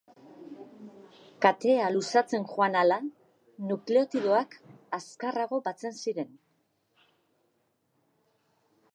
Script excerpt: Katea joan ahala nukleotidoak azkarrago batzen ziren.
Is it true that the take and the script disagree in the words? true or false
true